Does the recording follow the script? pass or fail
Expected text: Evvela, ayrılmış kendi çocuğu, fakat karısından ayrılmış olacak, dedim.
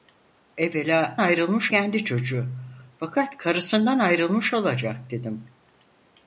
pass